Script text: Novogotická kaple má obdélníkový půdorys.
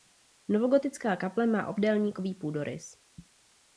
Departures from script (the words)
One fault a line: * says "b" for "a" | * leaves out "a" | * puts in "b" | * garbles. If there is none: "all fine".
all fine